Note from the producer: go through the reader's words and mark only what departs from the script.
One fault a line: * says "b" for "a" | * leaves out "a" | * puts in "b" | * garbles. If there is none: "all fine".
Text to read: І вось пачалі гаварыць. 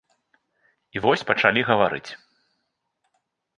all fine